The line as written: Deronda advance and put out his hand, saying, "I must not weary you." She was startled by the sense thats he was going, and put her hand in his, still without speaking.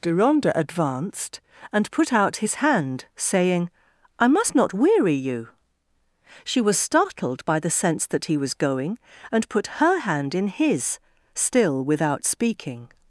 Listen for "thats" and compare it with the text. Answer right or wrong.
wrong